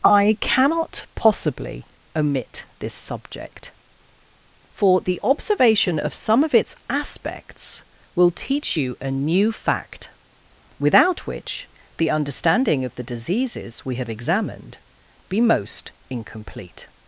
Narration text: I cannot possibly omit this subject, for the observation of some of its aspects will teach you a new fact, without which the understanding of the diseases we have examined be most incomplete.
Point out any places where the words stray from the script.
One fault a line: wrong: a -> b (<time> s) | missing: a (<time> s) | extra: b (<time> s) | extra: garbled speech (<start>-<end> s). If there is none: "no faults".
no faults